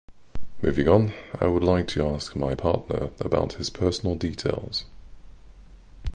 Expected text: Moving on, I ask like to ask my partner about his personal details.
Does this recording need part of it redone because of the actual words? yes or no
yes